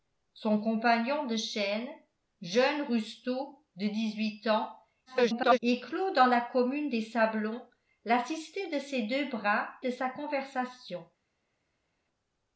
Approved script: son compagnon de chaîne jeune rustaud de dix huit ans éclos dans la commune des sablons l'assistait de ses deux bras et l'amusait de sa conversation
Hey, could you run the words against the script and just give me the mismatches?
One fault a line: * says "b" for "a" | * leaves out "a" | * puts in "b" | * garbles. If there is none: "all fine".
* garbles
* leaves out "et l'amusait"